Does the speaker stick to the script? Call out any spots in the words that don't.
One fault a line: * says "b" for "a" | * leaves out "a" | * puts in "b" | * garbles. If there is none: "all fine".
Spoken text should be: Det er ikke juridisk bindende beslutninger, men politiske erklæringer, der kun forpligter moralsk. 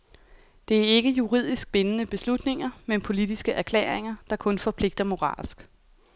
all fine